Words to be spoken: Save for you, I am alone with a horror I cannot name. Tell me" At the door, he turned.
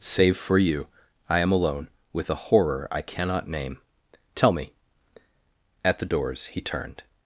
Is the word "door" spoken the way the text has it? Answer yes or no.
no